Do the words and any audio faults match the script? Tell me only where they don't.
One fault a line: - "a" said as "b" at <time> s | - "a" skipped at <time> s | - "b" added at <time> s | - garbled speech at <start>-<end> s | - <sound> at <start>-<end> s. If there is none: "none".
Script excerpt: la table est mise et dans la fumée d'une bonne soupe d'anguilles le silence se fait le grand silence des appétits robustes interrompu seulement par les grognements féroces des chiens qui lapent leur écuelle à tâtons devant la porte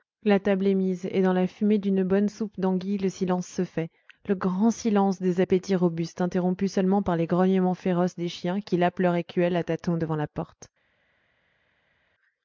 none